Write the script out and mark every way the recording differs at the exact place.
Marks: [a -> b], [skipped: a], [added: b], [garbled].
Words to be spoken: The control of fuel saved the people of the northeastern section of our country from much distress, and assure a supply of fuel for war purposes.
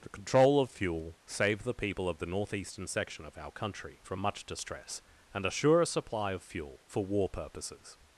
The control of fuel saved the people of the northeastern section of our country from much distress, and assure a supply of fuel for war purposes.